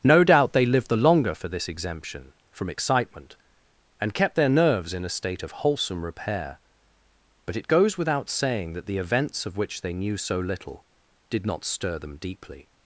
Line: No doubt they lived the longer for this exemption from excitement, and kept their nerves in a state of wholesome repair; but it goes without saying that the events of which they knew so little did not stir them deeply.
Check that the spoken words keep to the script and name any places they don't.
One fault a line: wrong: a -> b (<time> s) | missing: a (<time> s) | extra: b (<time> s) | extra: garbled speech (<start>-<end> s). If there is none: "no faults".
no faults